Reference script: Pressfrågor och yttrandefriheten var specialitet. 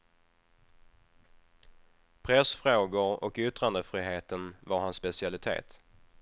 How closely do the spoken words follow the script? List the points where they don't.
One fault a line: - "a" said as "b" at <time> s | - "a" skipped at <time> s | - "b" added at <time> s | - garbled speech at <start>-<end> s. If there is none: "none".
- "hans" added at 4.8 s